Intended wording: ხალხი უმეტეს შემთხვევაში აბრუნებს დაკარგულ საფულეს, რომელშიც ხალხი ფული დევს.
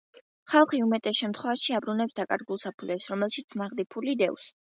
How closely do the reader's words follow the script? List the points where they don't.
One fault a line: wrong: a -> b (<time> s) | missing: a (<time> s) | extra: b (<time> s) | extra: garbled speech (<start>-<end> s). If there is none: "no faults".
wrong: ხალხი -> ნაღდი (3.6 s)